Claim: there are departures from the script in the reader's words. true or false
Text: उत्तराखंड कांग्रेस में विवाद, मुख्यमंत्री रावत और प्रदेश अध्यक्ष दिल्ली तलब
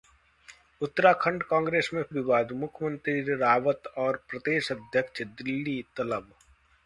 false